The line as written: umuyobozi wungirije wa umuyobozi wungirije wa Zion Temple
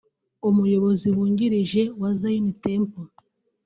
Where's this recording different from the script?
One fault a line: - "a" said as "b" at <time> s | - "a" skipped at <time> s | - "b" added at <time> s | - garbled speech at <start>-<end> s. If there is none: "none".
- "umuyobozi wungirije wa" skipped at 2.1 s